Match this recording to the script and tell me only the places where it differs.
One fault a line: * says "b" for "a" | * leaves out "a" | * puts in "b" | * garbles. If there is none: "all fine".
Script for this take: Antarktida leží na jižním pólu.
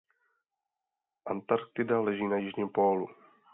all fine